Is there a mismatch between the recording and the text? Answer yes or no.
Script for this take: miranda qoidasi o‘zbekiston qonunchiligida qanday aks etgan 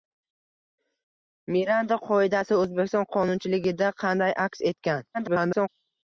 yes